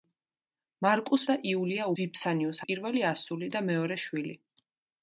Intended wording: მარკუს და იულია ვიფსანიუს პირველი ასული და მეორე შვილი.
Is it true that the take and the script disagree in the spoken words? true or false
false